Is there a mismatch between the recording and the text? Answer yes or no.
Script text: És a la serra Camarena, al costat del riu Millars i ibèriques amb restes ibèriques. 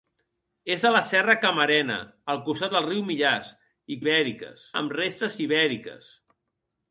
no